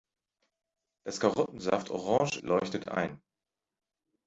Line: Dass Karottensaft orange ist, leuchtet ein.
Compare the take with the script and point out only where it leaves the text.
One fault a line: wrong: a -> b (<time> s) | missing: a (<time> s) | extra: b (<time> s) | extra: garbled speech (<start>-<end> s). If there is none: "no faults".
missing: ist (2.4 s)